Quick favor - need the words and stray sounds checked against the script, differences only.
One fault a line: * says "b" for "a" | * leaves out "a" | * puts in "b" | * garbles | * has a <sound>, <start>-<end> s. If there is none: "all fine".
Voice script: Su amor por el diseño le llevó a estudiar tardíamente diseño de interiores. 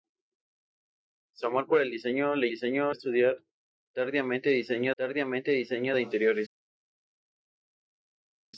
* says "diseño" for "llevó"
* puts in "tardíamente diseño"